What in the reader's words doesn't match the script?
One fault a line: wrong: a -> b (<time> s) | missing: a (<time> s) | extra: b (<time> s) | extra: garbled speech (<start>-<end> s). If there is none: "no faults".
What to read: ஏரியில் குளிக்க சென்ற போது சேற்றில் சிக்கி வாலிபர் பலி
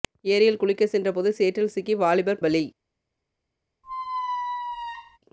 no faults